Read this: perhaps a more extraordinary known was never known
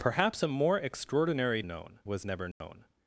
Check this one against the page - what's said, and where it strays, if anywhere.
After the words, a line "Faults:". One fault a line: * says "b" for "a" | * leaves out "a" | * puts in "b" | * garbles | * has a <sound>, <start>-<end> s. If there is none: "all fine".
perhaps a more extraordinary known was never known
Faults:
* has a dropout, 2.5-2.6 s